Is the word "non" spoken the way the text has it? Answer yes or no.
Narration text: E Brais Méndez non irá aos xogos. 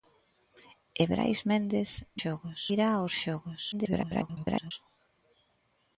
no